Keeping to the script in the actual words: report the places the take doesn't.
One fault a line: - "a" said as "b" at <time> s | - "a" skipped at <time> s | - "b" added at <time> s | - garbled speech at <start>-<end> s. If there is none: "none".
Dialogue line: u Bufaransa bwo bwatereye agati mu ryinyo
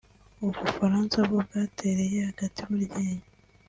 none